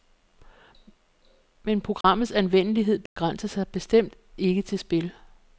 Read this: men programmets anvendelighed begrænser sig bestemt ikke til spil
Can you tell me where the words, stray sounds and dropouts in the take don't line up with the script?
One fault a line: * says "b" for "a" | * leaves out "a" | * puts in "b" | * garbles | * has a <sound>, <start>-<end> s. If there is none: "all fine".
* has a dropout, 2.0-2.0 s
* has a dropout, 3.1-3.2 s